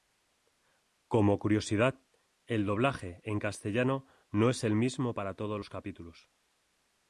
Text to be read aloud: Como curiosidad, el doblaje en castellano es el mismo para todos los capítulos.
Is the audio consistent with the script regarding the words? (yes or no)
no